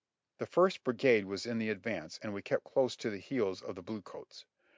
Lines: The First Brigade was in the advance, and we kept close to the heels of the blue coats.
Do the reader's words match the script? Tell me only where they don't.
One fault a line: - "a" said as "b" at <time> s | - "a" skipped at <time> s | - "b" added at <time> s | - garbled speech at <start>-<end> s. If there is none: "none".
none